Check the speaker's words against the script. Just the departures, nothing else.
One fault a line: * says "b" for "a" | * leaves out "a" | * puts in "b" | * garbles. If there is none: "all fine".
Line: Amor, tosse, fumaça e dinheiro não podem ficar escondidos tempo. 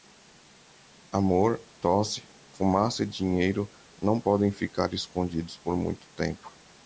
* puts in "por muito"